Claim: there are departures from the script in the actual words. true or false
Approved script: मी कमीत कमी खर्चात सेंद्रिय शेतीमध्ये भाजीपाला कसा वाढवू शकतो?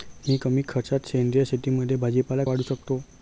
true